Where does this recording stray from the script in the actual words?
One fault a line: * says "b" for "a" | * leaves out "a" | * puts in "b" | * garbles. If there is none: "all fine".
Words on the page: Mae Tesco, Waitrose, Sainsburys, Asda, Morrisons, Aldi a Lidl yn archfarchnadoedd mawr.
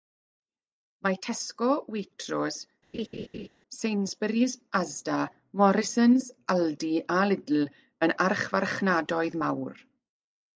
all fine